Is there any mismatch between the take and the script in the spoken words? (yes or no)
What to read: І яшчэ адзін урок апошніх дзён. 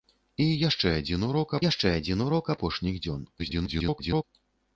yes